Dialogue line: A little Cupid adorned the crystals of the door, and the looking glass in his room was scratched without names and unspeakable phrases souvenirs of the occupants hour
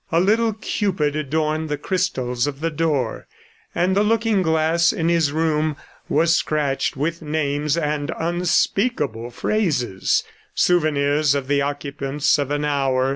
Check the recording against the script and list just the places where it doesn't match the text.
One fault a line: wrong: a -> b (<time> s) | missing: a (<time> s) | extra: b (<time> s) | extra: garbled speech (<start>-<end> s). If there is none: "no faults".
wrong: without -> with (7.0 s)
extra: of an (12.4 s)